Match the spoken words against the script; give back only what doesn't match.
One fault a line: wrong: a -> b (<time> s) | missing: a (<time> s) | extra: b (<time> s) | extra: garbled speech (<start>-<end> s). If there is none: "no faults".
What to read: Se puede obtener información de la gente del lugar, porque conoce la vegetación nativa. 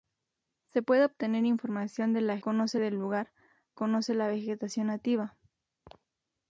wrong: gente -> conoce (2.4 s)
missing: porque (3.3 s)